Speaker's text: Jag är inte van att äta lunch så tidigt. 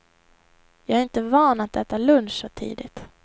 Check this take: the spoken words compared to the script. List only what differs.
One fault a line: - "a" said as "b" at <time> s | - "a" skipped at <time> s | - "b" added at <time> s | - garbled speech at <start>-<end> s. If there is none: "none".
none